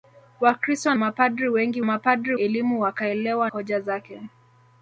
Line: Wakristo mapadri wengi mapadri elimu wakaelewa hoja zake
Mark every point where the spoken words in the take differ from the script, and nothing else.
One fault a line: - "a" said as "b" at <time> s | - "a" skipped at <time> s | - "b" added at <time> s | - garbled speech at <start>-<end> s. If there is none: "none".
none